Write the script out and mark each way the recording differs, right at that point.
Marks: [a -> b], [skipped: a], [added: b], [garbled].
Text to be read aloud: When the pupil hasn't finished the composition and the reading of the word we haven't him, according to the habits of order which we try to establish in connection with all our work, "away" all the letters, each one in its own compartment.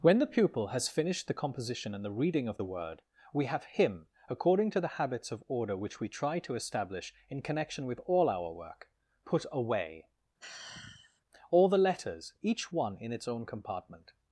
When the pupil [hasn't -> has] finished the composition and the reading of the word we [haven't -> have] him, according to the habits of order which we try to establish in connection with all our work, [added: put] "away" all the letters, each one in its own compartment.